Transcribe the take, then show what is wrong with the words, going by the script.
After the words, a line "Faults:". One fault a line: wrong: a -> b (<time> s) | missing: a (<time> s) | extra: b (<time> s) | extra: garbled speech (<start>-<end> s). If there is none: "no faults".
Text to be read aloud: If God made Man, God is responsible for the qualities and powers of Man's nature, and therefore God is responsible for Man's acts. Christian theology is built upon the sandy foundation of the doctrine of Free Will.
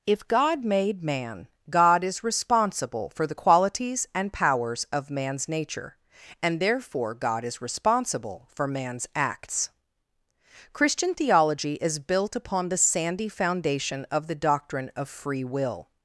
If God made Man, God is responsible for the qualities and powers of Man's nature, and therefore God is responsible for Man's acts. Christian theology is built upon the sandy foundation of the doctrine of Free Will.
Faults:
no faults